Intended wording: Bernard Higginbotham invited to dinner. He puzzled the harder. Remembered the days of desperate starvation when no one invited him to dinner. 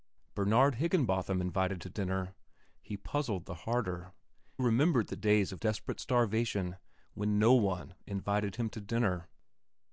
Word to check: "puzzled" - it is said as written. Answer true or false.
true